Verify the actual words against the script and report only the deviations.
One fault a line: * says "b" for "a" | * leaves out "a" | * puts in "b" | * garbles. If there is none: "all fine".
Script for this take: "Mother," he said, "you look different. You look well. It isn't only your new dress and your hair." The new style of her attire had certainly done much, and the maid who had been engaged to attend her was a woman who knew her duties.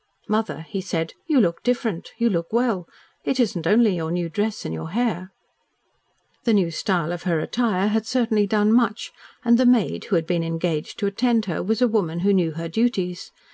all fine